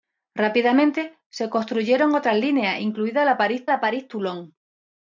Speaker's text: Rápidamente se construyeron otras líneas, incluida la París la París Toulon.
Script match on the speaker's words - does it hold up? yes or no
yes